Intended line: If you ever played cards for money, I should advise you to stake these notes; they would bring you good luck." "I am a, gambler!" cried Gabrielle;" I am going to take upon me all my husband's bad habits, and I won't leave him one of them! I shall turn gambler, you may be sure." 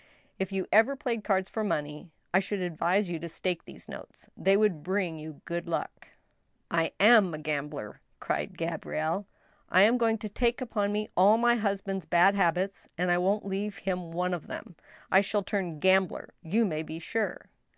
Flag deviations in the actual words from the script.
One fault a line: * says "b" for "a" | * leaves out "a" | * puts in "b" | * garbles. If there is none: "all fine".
all fine